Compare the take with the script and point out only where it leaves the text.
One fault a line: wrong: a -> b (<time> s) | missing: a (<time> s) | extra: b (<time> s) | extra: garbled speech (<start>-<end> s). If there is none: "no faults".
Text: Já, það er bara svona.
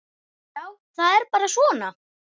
no faults